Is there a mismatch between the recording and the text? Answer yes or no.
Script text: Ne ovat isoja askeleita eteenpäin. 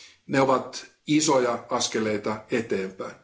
no